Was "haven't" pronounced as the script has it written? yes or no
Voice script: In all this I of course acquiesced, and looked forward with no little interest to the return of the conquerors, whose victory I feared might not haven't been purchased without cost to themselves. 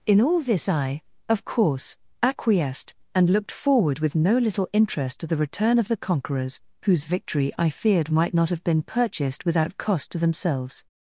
no